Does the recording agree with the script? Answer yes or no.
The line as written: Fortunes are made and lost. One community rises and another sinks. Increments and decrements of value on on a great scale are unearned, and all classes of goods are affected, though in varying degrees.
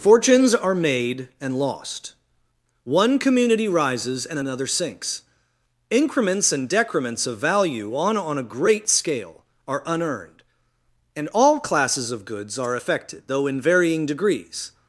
yes